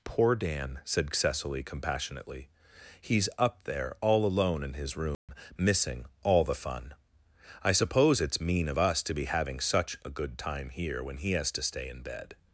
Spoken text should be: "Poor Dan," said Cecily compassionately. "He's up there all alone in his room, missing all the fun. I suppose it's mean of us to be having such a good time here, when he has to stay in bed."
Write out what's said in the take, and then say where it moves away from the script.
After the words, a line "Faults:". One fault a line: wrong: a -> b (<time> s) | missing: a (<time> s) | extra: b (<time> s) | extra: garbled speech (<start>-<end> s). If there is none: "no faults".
"Poor Dan," said Cecily compassionately. "He's up there all alone in his room, missing all the fun. I suppose it's mean of us to be having such a good time here, when he has to stay in bed."
Faults:
no faults